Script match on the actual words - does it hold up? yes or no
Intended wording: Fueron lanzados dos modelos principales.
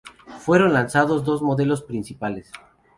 yes